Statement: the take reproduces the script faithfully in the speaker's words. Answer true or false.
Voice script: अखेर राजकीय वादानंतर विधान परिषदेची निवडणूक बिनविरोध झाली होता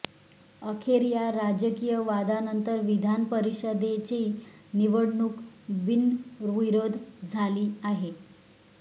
false